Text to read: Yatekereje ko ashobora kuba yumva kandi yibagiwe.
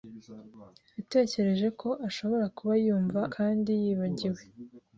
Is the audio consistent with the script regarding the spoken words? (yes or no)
yes